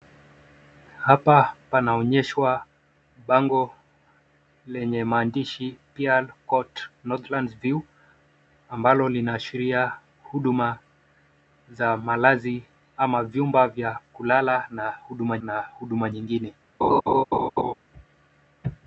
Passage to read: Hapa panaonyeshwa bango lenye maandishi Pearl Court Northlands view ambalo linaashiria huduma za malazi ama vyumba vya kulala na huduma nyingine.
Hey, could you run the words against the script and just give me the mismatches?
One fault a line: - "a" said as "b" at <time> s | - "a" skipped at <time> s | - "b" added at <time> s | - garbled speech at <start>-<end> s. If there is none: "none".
- "na huduma" added at 15.4 s